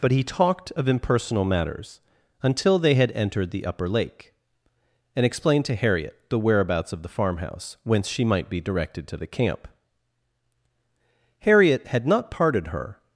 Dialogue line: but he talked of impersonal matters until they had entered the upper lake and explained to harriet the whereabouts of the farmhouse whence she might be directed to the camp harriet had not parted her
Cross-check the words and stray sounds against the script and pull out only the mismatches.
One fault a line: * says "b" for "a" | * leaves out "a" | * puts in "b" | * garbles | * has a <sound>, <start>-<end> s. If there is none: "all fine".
all fine